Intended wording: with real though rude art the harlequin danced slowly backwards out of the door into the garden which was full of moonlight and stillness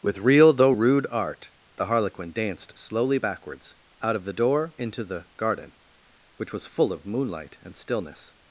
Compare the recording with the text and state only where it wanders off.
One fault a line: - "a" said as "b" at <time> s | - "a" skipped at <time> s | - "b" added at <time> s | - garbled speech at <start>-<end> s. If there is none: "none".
none